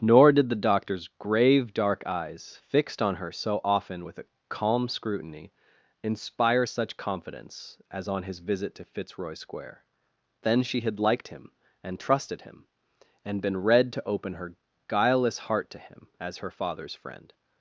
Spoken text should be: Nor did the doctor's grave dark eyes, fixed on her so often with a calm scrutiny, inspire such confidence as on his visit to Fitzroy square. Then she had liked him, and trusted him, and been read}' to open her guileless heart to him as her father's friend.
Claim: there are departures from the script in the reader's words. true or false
false